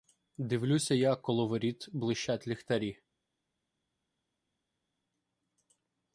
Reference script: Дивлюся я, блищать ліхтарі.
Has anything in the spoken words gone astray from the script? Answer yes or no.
yes